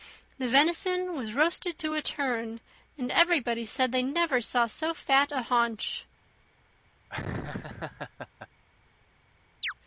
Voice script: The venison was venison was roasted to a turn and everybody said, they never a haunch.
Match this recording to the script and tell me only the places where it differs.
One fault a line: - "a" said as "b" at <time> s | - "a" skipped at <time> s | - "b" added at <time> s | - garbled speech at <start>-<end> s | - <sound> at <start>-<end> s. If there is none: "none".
- "venison was" skipped at 1.4 s
- "saw so fat" added at 4.4 s
- laugh at 7.1-8.5 s
- chirp at 9.6-9.7 s